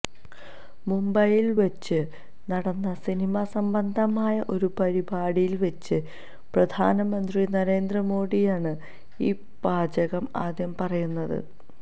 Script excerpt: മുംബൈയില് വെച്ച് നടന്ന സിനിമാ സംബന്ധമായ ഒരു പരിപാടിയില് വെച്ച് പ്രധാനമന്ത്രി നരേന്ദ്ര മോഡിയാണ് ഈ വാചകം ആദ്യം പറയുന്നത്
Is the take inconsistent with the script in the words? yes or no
no